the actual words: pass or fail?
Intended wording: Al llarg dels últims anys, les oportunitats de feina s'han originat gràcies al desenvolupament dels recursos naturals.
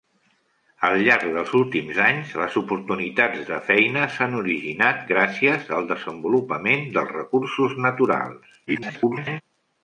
fail